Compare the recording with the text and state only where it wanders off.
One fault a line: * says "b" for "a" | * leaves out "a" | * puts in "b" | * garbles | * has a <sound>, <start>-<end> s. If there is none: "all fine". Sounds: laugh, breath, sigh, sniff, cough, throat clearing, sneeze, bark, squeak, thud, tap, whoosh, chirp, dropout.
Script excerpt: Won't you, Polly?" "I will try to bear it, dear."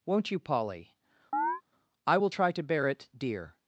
* has a chirp, 1.3-1.6 s